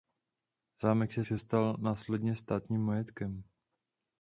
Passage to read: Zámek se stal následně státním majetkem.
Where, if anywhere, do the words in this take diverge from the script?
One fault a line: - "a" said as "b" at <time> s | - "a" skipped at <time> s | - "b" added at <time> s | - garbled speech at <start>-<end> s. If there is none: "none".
- "se" added at 1.3 s